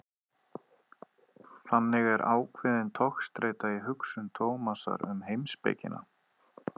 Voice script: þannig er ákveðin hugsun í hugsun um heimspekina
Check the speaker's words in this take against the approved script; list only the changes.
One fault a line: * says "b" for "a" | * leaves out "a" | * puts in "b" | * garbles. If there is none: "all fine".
* says "togstreita" for "hugsun"
* puts in "tómasar"